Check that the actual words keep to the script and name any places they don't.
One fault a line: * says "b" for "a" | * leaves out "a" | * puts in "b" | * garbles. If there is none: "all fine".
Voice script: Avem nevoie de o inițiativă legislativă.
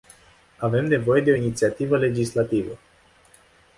all fine